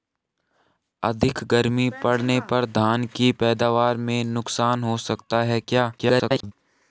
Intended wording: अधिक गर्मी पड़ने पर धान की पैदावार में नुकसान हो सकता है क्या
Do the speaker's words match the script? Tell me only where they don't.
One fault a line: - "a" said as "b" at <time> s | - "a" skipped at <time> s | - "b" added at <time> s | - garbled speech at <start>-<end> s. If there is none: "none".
- garbled speech at 6.0-6.5 s